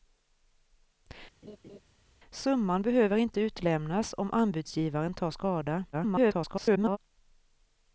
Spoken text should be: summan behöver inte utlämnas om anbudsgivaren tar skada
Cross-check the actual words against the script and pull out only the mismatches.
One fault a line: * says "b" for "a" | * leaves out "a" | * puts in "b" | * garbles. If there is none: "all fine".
* garbles